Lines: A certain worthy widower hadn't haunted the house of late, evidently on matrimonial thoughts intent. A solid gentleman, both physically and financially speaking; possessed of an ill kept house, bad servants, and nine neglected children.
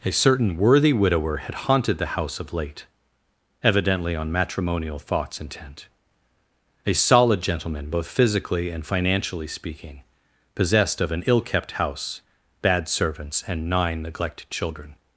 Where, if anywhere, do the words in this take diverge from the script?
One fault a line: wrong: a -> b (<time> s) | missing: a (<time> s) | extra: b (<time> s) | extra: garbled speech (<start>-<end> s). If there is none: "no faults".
wrong: hadn't -> had (1.4 s)